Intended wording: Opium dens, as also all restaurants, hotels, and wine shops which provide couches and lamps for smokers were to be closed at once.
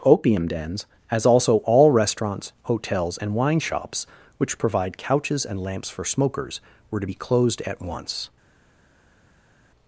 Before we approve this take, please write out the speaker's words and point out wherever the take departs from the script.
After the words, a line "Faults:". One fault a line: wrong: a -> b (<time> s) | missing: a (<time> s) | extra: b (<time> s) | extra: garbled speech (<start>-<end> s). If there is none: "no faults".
Opium dens, as also all restaurants, hotels, and wine shops which provide couches and lamps for smokers were to be closed at once.
Faults:
no faults